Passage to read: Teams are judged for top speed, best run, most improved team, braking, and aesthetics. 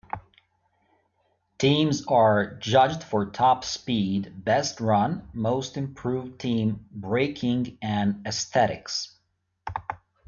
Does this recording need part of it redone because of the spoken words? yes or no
no